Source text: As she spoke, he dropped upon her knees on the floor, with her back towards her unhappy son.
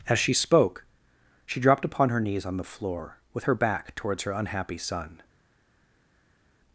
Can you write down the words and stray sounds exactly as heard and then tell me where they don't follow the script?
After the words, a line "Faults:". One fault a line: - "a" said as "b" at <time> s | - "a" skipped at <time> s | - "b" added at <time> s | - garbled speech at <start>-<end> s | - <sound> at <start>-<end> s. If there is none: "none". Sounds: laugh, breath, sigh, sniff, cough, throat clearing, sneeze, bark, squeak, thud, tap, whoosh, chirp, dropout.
As she spoke, she dropped upon her knees on the floor, with her back towards her unhappy son.
Faults:
- "he" said as "she" at 1.4 s